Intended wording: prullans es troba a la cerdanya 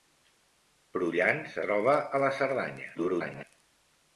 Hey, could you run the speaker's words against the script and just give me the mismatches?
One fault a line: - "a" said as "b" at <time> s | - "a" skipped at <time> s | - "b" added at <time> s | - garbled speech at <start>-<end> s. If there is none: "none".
- "es" skipped at 1.6 s
- garbled speech at 3.0-3.4 s